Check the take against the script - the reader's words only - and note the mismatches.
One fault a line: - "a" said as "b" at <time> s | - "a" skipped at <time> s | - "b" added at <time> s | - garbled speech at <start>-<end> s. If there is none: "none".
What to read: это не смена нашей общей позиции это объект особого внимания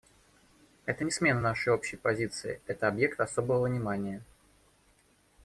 none